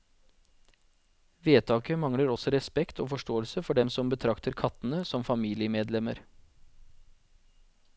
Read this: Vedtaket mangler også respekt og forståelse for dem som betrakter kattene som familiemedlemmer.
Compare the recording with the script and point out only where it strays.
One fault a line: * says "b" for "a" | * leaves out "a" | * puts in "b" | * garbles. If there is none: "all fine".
all fine